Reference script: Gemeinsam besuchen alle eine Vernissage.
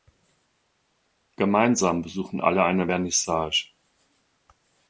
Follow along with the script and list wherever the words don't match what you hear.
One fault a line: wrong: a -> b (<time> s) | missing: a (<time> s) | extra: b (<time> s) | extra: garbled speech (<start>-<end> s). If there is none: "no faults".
no faults